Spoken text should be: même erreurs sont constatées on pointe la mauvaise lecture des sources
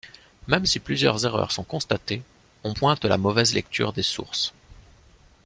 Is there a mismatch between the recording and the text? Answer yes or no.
yes